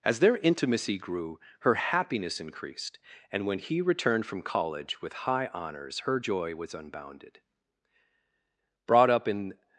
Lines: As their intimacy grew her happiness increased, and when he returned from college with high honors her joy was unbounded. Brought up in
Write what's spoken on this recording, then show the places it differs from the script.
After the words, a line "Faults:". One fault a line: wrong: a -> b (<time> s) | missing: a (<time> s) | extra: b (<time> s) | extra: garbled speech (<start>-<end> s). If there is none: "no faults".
As their intimacy grew her happiness increased, and when he returned from college with high honors her joy was unbounded. Brought up in
Faults:
no faults